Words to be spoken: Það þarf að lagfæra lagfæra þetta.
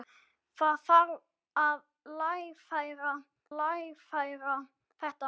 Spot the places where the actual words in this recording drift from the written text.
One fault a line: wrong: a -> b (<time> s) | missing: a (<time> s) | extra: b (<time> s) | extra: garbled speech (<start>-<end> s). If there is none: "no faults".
no faults